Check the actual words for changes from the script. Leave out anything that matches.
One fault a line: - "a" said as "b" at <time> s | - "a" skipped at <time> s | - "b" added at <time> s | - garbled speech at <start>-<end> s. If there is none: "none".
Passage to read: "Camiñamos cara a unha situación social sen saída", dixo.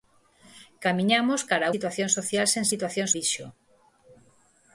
- "unha" skipped at 1.7 s
- "saída" said as "situación" at 2.7 s